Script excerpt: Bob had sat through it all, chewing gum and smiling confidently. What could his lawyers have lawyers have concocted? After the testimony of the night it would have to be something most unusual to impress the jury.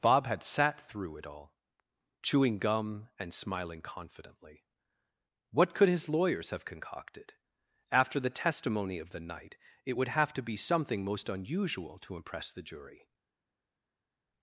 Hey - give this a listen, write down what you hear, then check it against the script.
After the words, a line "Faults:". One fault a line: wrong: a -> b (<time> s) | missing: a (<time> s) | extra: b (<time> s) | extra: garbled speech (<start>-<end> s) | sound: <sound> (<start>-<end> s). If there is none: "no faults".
Bob had sat through it all, chewing gum and smiling confidently. What could his lawyers have concocted? After the testimony of the night it would have to be something most unusual to impress the jury.
Faults:
missing: lawyers have (6.7 s)